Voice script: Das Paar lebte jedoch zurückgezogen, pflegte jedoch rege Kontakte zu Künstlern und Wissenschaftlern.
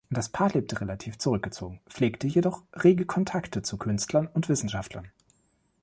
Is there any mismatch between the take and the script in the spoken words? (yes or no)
yes